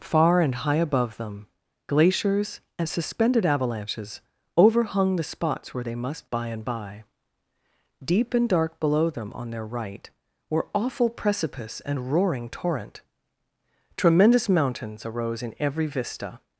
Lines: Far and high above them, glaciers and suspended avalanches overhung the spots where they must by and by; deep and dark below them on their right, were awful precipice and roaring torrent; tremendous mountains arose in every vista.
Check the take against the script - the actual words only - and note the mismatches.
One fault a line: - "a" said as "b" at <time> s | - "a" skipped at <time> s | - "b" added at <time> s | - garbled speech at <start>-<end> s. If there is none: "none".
none